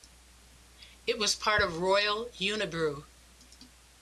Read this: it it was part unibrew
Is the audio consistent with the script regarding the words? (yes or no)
no